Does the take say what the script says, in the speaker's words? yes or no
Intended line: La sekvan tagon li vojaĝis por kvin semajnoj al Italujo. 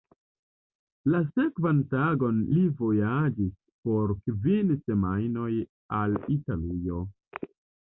yes